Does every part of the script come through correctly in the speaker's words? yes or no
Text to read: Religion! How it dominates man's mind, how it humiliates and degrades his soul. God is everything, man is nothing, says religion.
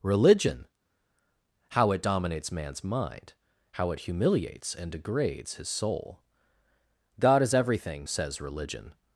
no